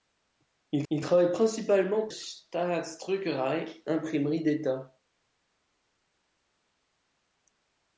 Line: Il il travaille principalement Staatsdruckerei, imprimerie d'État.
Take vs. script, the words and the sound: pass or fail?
pass